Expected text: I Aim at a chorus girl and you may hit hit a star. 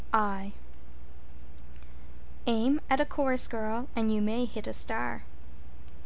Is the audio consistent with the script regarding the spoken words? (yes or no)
no